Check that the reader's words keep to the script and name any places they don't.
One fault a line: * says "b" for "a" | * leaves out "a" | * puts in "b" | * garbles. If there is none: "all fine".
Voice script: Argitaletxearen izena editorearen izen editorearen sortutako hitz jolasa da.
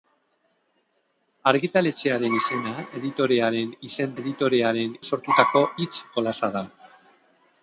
all fine